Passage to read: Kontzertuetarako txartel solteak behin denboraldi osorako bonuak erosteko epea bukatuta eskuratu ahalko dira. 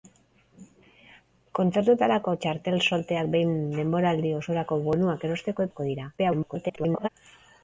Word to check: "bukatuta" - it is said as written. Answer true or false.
false